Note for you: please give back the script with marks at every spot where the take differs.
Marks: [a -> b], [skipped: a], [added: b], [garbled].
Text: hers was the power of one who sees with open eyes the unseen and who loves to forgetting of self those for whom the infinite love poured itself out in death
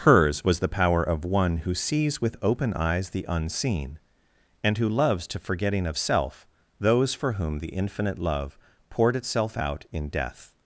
hers was the power of one who sees with open eyes the unseen and who loves to forgetting of self those for whom the infinite love poured itself out in death